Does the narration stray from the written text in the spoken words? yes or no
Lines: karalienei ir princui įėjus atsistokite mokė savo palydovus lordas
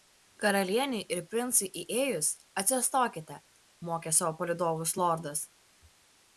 no